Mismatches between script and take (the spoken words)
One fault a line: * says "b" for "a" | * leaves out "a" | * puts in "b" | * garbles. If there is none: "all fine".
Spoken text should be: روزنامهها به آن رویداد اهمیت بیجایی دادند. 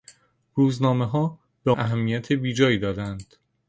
* leaves out "آن رویداد"